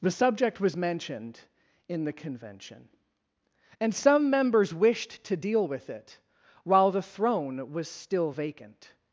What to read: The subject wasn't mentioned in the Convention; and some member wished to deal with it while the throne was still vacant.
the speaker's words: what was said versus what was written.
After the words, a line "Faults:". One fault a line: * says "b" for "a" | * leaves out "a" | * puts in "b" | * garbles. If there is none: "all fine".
The subject was mentioned in the Convention; and some members wished to deal with it while the throne was still vacant.
Faults:
* says "was" for "wasn't"
* says "members" for "member"